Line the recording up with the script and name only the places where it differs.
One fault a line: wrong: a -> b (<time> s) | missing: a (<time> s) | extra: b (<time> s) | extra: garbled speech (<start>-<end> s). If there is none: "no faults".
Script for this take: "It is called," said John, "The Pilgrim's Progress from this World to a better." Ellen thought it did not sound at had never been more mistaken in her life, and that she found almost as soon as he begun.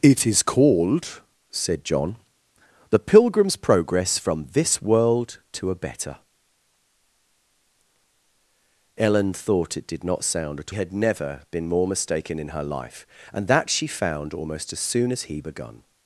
no faults